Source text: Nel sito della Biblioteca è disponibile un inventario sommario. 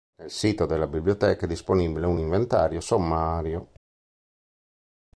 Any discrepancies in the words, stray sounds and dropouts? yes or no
no